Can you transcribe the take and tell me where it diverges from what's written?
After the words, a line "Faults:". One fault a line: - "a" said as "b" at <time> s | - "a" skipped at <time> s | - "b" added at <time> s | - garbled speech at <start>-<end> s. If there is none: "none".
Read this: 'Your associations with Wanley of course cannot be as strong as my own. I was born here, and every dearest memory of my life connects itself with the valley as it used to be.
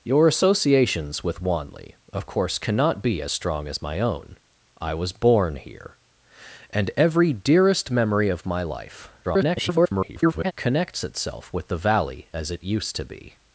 'Your associations with Wanley of course cannot be as strong as my own. I was born here, and every dearest memory of my life [garbled] connects itself with the valley as it used to be.
Faults:
- garbled speech at 9.2-10.5 s